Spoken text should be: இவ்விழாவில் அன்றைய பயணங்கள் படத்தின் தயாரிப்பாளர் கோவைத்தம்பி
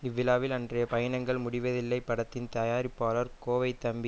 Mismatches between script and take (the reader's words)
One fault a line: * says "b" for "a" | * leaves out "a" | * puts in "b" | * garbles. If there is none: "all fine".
* puts in "முடிவதில்லை"